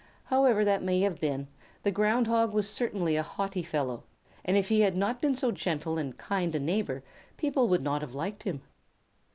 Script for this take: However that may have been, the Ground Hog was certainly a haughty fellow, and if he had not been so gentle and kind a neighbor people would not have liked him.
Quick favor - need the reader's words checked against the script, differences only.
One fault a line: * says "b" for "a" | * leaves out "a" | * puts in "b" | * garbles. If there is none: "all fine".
all fine